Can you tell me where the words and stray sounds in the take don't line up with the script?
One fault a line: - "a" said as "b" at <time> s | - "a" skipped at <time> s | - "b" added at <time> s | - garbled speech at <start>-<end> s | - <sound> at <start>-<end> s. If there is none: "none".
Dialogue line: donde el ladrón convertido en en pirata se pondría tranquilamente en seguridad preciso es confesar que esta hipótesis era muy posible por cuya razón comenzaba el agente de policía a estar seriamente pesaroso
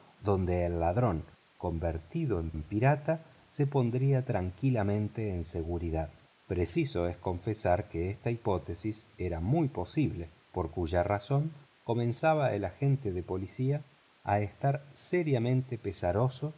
none